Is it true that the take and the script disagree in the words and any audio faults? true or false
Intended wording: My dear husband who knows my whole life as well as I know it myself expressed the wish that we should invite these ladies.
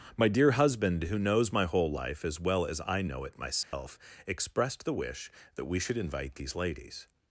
true